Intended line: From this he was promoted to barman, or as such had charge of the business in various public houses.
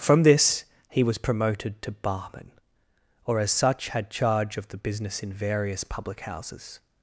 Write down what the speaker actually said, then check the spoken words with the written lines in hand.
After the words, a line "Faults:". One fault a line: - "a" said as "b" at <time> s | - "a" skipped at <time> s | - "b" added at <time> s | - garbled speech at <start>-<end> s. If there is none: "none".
From this he was promoted to barman, or as such had charge of the business in various public houses.
Faults:
none